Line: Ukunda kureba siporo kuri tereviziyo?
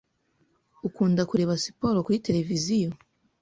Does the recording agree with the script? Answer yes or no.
yes